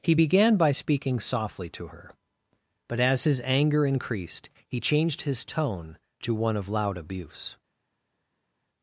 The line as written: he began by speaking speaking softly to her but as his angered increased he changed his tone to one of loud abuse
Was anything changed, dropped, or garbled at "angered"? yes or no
yes